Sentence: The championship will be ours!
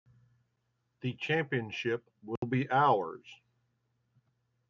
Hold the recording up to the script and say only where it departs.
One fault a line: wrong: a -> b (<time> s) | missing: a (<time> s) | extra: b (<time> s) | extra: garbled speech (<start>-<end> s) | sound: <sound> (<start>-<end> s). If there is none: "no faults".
sound: dropout (2.4-2.4 s)